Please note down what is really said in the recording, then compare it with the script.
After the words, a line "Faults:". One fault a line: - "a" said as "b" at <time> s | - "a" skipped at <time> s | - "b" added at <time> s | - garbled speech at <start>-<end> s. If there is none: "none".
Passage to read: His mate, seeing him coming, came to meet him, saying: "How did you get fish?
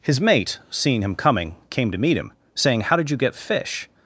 His mate, seeing him coming, came to meet him, saying: "How did you get fish?
Faults:
none